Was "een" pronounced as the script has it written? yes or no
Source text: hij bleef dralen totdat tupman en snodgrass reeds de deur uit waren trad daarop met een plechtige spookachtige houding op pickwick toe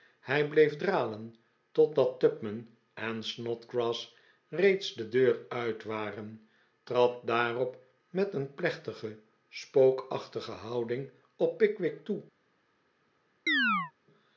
yes